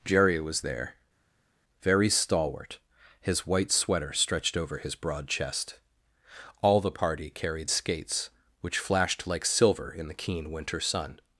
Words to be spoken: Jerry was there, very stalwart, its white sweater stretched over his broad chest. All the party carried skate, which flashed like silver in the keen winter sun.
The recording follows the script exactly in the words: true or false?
false